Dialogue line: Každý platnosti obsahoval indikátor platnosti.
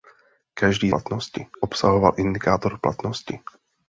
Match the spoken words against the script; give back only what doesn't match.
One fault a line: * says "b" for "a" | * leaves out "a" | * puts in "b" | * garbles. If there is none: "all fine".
all fine